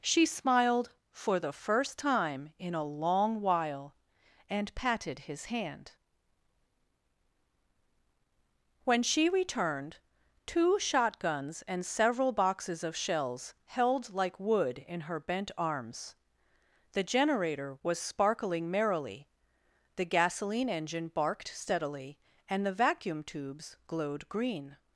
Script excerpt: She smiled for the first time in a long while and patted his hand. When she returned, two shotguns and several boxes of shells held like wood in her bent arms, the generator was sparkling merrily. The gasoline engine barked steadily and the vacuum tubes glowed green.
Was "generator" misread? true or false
false